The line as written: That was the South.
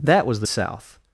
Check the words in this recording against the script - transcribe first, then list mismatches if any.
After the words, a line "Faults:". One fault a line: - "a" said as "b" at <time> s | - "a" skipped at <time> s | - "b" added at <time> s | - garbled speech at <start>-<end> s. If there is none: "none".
That was the South.
Faults:
none